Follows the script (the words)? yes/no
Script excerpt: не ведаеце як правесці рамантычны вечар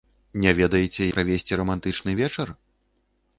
no